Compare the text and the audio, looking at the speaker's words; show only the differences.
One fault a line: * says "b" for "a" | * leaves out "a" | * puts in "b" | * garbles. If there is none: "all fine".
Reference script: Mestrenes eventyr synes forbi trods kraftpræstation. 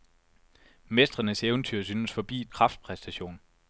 * leaves out "trods"